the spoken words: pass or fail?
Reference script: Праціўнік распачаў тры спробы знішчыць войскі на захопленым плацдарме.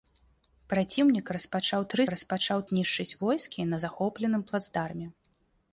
fail